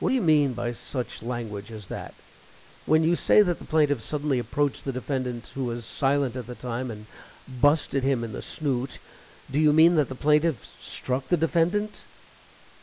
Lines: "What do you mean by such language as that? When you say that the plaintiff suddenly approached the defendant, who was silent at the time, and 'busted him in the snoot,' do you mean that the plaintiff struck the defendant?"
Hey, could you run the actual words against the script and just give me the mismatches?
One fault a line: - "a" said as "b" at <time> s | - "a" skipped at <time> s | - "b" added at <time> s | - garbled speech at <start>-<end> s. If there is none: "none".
none